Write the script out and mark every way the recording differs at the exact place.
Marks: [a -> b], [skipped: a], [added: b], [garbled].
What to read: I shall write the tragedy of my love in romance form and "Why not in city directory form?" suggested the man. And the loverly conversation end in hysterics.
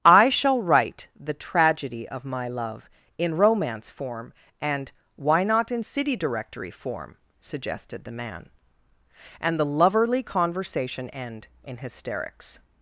I shall write the tragedy of my love in romance form and "Why not in city directory form?" suggested the man. And the loverly conversation end in hysterics.